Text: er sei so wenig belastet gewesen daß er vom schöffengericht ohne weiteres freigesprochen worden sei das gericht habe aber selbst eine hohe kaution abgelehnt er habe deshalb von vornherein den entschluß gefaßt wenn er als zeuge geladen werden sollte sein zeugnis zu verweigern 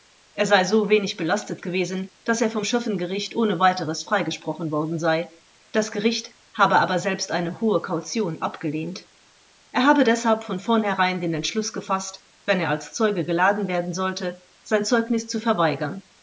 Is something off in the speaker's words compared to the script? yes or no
no